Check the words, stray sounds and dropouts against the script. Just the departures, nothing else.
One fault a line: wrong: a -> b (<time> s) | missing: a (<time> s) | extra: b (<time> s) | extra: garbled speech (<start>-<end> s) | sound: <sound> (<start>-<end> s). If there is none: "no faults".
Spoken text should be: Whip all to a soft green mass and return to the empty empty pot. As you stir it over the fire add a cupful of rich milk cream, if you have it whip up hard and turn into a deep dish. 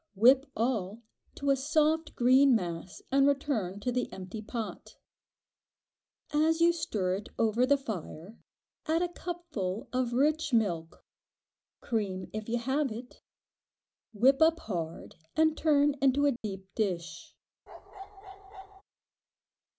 missing: empty (4.4 s)
sound: dropout (16.4-16.4 s)
sound: bark (17.7-18.8 s)